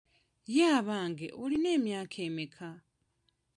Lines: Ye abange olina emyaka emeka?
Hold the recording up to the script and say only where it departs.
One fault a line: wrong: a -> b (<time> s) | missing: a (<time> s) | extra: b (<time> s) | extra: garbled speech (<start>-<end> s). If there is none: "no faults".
no faults